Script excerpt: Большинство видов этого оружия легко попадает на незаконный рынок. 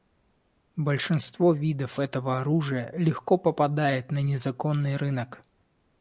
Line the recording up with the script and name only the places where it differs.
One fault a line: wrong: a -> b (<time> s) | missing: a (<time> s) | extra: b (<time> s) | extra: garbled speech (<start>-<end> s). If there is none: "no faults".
no faults